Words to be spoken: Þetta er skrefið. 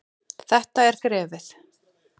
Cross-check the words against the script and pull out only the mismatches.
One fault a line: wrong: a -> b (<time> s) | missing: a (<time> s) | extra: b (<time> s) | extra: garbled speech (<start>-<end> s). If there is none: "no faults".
no faults